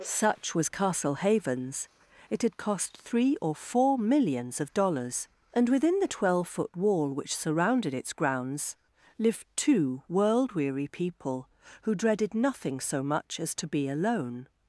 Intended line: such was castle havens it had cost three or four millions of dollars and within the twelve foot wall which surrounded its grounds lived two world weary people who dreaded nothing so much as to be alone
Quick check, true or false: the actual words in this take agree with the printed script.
true